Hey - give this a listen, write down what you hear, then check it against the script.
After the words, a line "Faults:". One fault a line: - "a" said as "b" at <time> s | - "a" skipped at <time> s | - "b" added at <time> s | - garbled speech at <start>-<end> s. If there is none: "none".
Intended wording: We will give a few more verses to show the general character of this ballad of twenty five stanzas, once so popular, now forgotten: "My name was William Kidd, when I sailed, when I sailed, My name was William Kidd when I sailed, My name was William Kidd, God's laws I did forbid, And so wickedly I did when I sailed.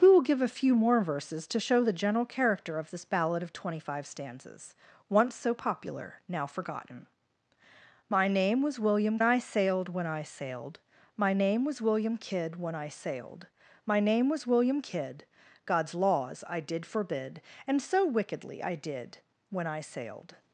We will give a few more verses to show the general character of this ballad of twenty five stanzas, once so popular, now forgotten: "My name was William I sailed, when I sailed, My name was William Kidd when I sailed, My name was William Kidd, God's laws I did forbid, And so wickedly I did when I sailed.
Faults:
- "Kidd when" skipped at 9.2 s